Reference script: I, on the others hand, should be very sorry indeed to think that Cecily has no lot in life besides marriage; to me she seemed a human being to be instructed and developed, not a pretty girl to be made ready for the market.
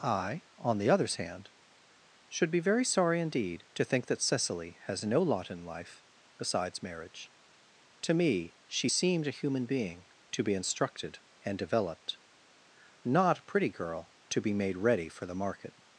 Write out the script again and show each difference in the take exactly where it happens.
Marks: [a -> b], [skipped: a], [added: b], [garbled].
I, on the others hand, should be very sorry indeed to think that Cecily has no lot in life besides marriage; to me she seemed a human being to be instructed and developed, not a pretty girl to be made ready for the market.